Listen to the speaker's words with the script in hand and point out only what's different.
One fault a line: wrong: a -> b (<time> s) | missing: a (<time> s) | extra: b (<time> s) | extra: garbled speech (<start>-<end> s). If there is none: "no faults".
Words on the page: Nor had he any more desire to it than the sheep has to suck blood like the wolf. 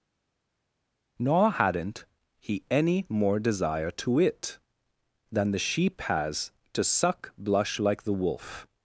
wrong: had -> hadn't (1.5 s)
wrong: blood -> blush (7.4 s)